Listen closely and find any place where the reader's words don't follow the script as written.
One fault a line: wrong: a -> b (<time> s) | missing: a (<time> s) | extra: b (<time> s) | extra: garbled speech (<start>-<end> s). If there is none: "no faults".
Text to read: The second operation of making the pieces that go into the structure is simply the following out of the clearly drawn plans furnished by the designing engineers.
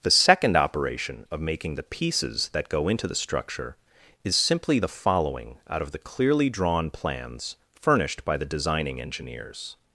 no faults